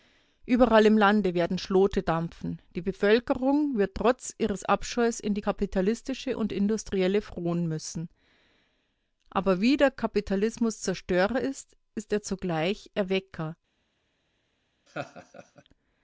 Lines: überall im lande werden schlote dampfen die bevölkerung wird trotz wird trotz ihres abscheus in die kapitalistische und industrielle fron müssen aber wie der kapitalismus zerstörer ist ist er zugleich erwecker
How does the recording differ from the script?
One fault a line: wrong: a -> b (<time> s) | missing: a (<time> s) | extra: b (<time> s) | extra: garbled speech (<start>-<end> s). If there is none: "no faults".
missing: wird trotz (4.3 s)